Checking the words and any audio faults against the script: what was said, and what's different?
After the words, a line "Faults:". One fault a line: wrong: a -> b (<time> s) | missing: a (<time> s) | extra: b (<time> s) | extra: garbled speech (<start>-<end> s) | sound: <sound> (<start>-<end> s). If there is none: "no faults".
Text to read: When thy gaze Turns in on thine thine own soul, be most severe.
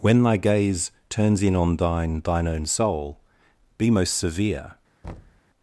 When thy gaze Turns in on thine thine own soul, be most severe.
Faults:
sound: thud (5.0-5.4 s)